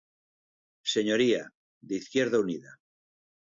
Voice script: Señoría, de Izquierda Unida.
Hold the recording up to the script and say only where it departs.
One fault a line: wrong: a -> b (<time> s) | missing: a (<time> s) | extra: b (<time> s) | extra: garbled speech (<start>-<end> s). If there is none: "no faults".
no faults